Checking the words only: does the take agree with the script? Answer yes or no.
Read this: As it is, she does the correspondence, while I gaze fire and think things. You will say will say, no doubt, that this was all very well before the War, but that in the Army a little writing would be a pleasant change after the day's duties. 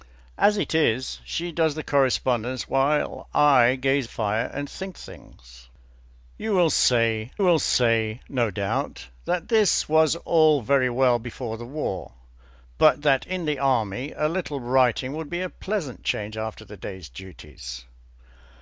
yes